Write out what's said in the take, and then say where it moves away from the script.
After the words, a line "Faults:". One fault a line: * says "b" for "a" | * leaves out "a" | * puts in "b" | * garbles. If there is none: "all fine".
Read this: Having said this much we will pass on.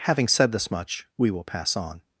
Having said this much we will pass on.
Faults:
all fine